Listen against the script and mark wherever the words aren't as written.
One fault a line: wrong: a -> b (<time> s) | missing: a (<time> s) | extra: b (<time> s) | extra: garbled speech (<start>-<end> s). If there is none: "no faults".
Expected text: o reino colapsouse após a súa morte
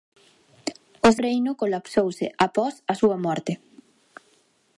no faults